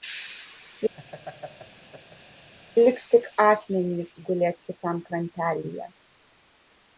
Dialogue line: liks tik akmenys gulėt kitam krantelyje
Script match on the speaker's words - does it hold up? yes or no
yes